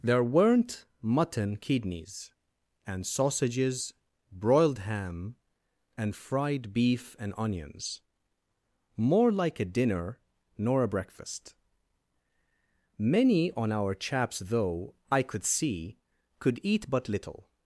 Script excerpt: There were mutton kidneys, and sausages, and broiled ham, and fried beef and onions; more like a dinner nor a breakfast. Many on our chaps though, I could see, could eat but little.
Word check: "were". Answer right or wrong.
wrong